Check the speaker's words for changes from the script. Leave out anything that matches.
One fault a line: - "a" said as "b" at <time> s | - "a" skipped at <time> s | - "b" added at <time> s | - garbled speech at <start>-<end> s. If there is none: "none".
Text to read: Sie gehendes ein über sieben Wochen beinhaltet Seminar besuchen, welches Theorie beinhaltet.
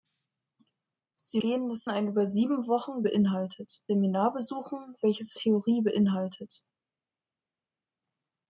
none